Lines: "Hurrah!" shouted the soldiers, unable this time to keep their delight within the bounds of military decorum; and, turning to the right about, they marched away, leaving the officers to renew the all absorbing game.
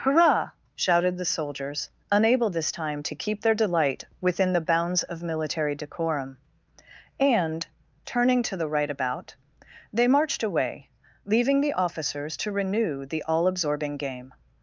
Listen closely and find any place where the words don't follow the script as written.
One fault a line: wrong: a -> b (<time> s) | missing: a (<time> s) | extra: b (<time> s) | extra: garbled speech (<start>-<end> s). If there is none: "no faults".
no faults